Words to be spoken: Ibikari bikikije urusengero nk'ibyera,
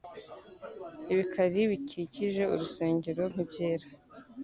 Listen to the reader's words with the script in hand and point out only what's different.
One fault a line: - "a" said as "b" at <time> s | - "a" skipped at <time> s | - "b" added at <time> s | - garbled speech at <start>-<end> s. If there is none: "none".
none